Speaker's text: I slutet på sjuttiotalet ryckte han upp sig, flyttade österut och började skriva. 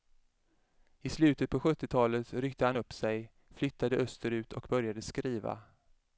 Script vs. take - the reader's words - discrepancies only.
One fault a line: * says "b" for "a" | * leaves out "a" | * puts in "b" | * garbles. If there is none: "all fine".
all fine